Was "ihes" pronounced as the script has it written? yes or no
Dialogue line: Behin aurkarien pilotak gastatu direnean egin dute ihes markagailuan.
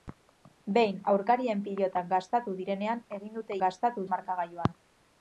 no